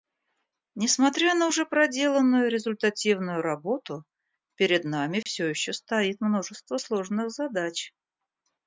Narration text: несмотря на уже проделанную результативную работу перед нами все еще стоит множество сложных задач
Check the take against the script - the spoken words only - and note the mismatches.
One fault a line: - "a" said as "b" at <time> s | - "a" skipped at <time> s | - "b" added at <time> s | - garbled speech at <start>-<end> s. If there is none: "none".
none